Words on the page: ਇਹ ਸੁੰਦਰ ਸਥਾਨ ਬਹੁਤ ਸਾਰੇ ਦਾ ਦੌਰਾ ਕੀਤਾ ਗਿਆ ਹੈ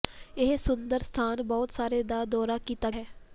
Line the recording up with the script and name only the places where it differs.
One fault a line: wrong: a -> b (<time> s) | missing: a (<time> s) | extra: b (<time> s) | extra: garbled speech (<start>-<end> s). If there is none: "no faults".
missing: ਗਿਆ (2.9 s)